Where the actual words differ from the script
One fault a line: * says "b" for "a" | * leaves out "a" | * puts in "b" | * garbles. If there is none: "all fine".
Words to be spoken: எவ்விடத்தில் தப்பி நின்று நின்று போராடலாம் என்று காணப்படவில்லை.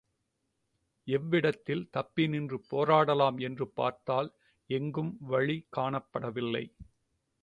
* leaves out "நின்று"
* puts in "பார்த்தால் எங்கும் வழி"